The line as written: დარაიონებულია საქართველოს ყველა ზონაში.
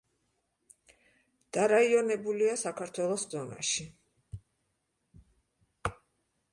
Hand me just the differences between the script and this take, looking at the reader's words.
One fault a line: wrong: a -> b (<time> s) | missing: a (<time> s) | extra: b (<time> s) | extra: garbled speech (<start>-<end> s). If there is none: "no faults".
missing: ყველა (3.3 s)